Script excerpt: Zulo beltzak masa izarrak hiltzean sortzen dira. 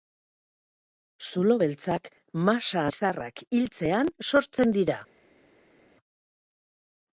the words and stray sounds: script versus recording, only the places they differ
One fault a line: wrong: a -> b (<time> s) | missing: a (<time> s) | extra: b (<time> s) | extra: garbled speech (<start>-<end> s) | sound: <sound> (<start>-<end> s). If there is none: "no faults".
no faults